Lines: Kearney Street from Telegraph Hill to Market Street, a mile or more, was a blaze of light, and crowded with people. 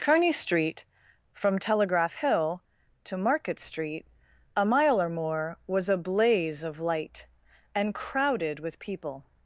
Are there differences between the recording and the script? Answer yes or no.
no